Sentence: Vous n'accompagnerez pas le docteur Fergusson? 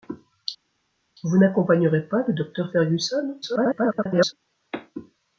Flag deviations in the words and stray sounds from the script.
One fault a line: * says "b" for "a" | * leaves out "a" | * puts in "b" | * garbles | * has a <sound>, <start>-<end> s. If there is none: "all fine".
* garbles